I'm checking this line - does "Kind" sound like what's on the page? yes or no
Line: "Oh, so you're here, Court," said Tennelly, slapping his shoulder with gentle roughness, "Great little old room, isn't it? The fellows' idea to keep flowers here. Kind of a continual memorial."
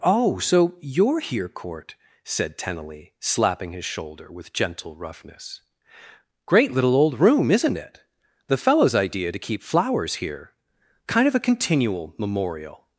yes